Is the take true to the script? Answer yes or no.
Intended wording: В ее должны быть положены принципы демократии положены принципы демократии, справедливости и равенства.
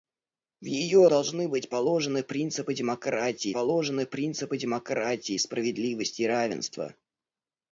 yes